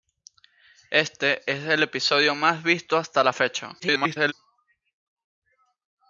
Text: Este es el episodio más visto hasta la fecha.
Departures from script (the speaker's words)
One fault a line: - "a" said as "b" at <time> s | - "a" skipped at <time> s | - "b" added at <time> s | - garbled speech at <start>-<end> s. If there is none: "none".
- garbled speech at 3.8-4.3 s